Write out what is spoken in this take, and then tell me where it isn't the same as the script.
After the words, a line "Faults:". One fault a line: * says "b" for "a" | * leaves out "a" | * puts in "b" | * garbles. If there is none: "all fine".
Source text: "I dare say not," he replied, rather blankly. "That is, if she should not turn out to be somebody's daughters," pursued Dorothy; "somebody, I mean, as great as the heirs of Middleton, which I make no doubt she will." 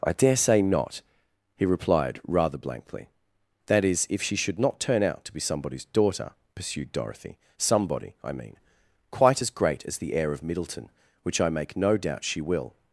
"I dare say not," he replied, rather blankly. "That is, if she should not turn out to be somebody's daughter," pursued Dorothy; "somebody, I mean, quite as great as the heir of Middleton, which I make no doubt she will."
Faults:
* says "daughter" for "daughters"
* puts in "quite"
* says "heir" for "heirs"